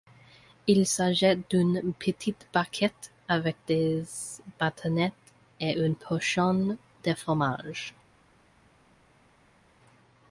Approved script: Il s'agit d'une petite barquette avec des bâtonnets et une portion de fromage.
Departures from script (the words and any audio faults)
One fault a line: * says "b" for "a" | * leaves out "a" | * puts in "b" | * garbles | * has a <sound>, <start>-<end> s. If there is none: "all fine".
all fine